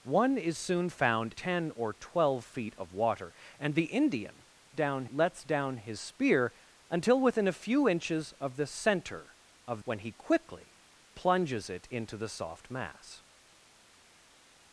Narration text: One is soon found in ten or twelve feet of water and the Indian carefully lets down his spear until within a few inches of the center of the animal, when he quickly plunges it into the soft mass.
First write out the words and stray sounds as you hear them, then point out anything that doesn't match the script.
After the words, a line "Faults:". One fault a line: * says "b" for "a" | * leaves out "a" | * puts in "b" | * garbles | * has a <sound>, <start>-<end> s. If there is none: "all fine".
One is soon found ten or twelve feet of water and the Indian down lets down his spear until within a few inches of the center of when he quickly plunges it into the soft mass.
Faults:
* leaves out "in"
* says "down" for "carefully"
* leaves out "the animal"